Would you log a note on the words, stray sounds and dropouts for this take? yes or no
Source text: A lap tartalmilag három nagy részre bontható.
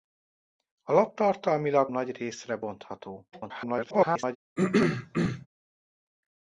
yes